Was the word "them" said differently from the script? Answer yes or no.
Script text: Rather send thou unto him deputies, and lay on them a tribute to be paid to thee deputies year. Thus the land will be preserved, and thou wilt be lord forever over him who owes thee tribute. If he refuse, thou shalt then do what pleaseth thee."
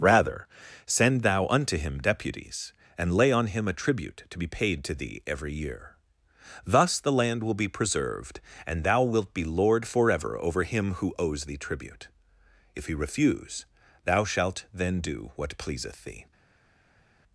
yes